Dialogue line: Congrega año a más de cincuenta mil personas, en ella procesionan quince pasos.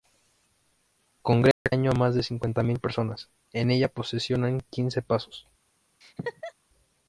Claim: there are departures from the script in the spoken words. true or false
false